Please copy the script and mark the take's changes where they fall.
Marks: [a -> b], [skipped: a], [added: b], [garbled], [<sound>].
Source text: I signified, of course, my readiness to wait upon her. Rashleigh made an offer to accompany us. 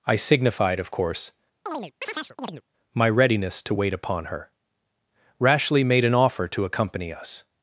I signified, of course, [chirp] my readiness to wait upon her. Rashleigh made an offer to accompany us.